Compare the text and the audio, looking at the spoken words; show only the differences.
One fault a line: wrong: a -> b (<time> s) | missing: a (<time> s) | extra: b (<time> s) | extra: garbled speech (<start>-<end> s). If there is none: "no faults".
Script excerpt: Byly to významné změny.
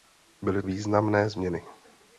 missing: to (0.6 s)